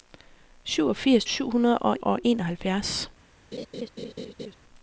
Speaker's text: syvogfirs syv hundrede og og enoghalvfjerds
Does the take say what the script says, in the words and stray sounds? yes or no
no